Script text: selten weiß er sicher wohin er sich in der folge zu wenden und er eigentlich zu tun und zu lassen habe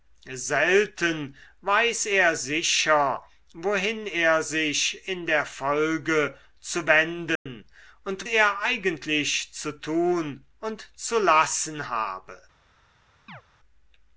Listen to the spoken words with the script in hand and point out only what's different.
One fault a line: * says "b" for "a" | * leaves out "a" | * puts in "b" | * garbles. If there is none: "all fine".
all fine